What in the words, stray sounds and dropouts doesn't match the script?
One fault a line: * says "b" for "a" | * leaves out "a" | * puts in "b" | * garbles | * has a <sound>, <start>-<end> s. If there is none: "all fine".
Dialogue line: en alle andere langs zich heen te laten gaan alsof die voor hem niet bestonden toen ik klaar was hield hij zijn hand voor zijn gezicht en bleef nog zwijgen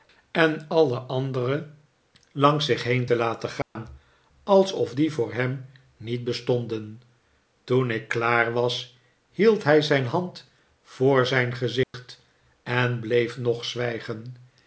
* has a dropout, 3.6-3.8 s
* has a dropout, 11.8-11.9 s